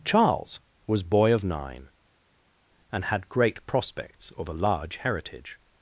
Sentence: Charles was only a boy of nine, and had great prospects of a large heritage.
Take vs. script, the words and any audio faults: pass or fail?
fail